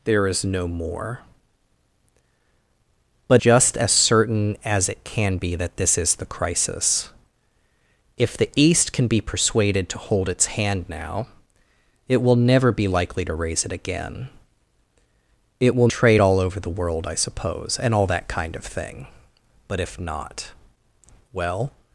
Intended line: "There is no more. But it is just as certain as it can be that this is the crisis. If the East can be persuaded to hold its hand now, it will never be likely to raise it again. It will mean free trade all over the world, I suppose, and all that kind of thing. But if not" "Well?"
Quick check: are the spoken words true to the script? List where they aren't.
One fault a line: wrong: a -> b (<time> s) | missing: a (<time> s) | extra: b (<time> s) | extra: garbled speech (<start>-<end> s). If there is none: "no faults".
missing: it is (3.4 s)
missing: mean free (15.9 s)